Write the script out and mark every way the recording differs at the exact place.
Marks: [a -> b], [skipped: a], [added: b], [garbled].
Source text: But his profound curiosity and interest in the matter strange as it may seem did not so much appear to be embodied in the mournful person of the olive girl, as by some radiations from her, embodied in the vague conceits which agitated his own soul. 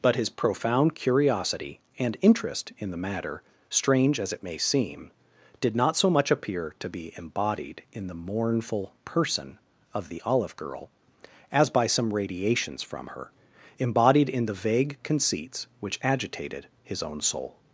But his profound curiosity and interest in the matter strange as it may seem did not so much appear to be embodied in the mournful person of the olive girl, as by some radiations from her, embodied in the vague conceits which agitated his own soul.